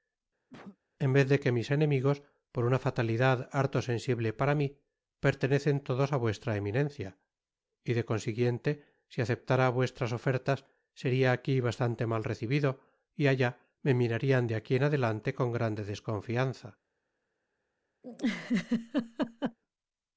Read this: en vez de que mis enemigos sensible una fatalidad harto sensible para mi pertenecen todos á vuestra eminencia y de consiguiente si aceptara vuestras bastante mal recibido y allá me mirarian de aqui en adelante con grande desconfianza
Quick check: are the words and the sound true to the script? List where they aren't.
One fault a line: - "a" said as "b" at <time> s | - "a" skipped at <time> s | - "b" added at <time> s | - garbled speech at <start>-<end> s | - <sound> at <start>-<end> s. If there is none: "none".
- cough at 0.5-0.8 s
- "sensible" said as "por" at 2.5 s
- "ofertas seria aqui" added at 10.2 s
- laugh at 18.0-19.6 s